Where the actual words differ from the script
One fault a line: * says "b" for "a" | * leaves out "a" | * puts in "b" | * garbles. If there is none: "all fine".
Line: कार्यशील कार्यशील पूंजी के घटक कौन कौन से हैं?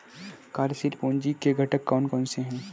* leaves out "कार्यशील"